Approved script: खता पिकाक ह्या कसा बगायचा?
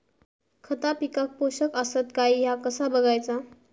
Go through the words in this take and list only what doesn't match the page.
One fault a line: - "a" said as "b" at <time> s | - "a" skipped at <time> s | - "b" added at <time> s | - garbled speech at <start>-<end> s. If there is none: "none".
- "पोषक आसत काय" added at 1.4 s